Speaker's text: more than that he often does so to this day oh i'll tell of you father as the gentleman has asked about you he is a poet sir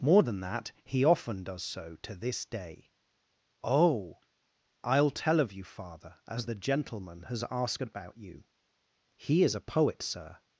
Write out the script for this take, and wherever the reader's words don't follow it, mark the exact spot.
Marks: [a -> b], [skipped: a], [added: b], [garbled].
more than that he often does so to this day oh i'll tell of you father as the gentleman has asked about you he is a poet sir